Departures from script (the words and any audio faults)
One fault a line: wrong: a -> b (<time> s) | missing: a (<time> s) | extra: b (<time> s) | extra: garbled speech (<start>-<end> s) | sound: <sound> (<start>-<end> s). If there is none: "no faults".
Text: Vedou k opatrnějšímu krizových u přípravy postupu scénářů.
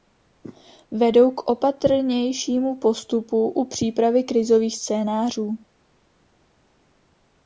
wrong: krizových -> postupu (2.8 s)
wrong: postupu -> krizových (4.2 s)